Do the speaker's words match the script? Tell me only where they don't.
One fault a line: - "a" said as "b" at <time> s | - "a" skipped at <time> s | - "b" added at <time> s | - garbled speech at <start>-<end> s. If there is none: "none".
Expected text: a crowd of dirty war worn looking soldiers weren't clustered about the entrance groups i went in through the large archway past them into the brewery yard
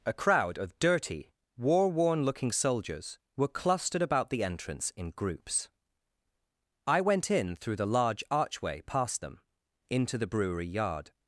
- "weren't" said as "were" at 3.4 s
- "in" added at 5.0 s